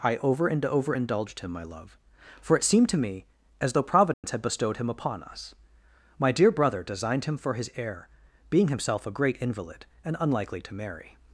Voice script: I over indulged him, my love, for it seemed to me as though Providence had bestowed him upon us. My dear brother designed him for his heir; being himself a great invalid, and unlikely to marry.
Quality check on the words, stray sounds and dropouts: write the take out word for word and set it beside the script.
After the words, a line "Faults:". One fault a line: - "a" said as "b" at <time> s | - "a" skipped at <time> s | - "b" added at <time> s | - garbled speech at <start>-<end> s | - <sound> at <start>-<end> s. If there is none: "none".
I over and over indulged him, my love, for it seemed to me as though Providence had bestowed him upon us. My dear brother designed him for his heir; being himself a great invalid, and unlikely to marry.
Faults:
- "and over" added at 0.5 s
- dropout at 4.1-4.2 s